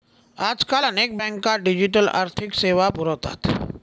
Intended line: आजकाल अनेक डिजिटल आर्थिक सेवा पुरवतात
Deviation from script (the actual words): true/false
true